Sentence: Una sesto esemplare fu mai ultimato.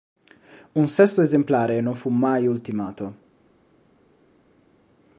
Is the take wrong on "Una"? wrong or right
wrong